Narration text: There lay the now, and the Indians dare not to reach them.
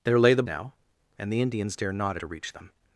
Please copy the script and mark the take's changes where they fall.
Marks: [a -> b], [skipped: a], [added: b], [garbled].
There lay the now, and the Indians dare not to reach them.